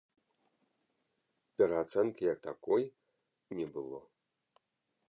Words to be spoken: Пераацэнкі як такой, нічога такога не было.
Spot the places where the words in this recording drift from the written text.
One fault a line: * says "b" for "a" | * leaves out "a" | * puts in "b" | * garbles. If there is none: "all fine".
* leaves out "нічога такога"